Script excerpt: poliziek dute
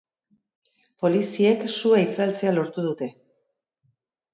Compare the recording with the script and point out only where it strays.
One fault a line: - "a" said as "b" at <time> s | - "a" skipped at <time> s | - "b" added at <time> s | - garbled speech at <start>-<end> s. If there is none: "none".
- "sua itzaltzea lortu" added at 1.8 s